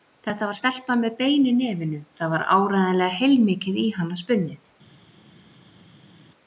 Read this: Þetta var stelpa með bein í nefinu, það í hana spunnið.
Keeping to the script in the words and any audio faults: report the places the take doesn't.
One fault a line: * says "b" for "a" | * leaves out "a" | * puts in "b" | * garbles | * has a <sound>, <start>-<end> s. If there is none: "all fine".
* puts in "var áreiðanlega heilmikið"